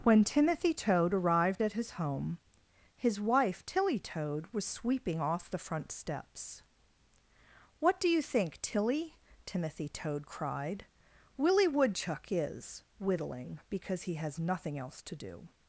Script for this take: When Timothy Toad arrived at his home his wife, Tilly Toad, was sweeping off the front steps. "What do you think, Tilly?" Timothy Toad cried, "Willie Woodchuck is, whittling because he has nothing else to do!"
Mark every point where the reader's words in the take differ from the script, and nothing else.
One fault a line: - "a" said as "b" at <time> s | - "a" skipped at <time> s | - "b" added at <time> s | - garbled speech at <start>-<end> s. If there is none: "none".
none